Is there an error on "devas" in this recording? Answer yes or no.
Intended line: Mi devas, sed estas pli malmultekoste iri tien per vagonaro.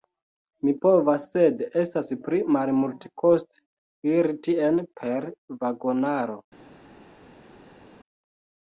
yes